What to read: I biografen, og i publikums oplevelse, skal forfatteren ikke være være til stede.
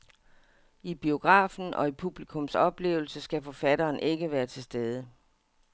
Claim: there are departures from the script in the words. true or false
true